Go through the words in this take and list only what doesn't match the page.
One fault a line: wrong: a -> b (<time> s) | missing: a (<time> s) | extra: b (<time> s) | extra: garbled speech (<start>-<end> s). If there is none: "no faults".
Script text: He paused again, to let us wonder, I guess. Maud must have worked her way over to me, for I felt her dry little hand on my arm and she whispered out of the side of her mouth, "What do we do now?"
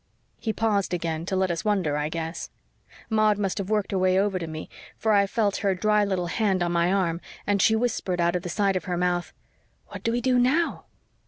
no faults